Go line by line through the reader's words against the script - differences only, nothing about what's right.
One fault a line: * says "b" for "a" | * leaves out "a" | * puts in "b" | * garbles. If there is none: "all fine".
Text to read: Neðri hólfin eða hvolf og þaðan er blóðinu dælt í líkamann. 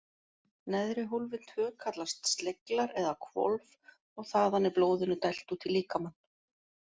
* puts in "tvö kallast sleglar"
* puts in "út"